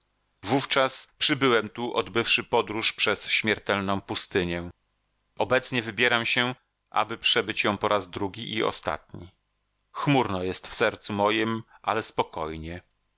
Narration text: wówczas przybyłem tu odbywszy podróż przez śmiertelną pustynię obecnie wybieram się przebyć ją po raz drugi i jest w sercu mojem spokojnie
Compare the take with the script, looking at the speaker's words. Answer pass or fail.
fail